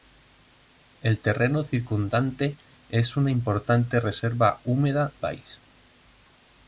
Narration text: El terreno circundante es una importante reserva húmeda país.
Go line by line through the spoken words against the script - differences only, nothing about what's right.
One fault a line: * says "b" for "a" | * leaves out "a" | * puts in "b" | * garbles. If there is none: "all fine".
all fine